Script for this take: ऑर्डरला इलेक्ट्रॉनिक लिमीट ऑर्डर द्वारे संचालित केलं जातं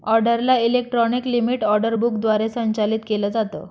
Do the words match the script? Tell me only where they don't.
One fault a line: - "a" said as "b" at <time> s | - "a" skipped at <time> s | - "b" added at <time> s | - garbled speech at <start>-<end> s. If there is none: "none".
- "बुक" added at 1.9 s